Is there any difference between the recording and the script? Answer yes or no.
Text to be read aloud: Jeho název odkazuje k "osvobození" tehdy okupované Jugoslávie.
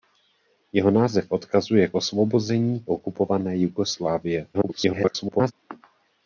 yes